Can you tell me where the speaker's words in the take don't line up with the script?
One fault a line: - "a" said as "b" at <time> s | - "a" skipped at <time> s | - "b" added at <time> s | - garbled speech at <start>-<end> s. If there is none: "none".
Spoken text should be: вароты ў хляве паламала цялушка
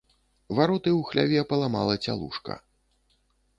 none